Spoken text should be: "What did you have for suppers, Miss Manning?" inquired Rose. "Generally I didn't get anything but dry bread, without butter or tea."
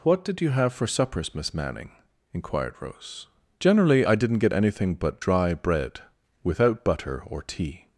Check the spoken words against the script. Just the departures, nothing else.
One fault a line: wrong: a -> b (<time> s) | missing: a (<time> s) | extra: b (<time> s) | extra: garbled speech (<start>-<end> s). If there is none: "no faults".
no faults